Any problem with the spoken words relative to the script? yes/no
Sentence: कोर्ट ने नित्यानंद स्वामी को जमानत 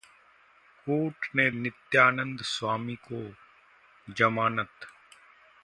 no